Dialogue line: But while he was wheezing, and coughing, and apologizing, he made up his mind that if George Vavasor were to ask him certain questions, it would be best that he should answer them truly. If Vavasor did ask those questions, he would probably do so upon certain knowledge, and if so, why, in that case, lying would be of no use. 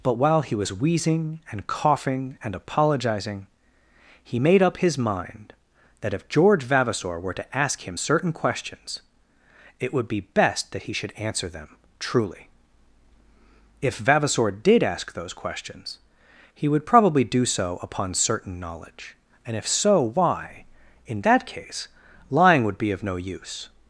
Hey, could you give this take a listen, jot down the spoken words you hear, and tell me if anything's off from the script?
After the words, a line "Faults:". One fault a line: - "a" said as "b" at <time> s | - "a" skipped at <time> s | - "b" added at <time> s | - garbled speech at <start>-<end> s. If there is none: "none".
But while he was wheezing, and coughing, and apologizing, he made up his mind that if George Vavasor were to ask him certain questions, it would be best that he should answer them truly. If Vavasor did ask those questions, he would probably do so upon certain knowledge, and if so, why, in that case, lying would be of no use.
Faults:
none